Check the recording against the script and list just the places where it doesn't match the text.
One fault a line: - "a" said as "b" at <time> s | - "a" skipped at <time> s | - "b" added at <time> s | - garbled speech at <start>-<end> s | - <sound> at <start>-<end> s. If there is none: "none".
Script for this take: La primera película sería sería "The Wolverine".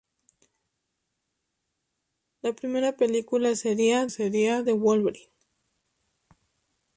none